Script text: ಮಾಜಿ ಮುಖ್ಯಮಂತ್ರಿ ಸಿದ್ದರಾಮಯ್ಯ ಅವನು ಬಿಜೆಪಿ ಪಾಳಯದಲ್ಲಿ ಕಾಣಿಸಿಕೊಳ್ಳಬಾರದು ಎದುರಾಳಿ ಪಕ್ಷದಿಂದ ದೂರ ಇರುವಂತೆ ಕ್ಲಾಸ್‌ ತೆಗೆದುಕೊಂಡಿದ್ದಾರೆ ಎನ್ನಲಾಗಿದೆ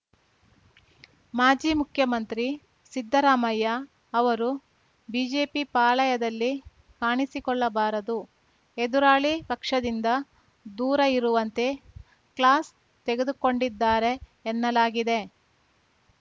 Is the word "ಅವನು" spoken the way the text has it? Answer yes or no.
no